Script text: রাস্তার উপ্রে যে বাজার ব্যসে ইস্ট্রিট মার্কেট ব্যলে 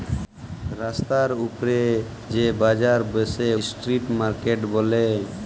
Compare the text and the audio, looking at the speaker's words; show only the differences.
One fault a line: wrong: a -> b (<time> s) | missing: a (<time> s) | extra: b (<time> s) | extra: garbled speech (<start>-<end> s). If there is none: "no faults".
no faults